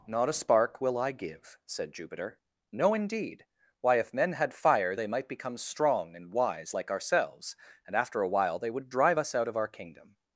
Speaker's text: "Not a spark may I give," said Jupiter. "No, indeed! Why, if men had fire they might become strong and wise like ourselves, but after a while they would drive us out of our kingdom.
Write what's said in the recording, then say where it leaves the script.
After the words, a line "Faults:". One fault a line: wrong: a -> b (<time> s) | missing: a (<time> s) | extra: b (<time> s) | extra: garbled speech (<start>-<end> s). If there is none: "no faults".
"Not a spark will I give," said Jupiter. "No, indeed! Why, if men had fire they might become strong and wise like ourselves, and after a while they would drive us out of our kingdom.
Faults:
wrong: may -> will (0.8 s)
wrong: but -> and (7.9 s)